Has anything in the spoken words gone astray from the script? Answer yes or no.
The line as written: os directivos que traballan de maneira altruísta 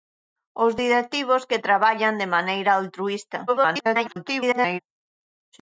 yes